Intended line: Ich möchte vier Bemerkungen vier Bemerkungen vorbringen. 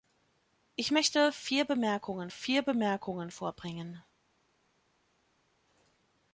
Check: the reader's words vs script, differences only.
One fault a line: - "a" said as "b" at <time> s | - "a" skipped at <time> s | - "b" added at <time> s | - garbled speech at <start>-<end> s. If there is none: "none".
none